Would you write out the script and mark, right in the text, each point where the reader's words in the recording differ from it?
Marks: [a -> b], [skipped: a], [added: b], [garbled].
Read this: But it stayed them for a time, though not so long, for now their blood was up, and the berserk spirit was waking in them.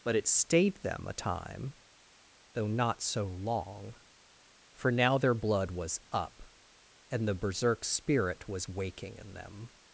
But it stayed them [skipped: for] a time, though not so long, for now their blood was up, and the berserk spirit was waking in them.